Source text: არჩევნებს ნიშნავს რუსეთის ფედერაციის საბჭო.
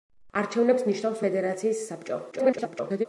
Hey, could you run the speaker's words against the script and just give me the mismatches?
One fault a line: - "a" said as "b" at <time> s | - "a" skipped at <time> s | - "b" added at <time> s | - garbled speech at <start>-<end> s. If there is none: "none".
- "რუსეთის" skipped at 1.2 s
- garbled speech at 2.3-3.1 s